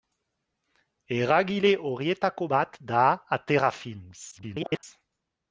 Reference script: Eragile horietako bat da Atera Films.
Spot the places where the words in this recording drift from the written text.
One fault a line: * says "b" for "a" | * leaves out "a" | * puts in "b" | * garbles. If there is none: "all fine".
* garbles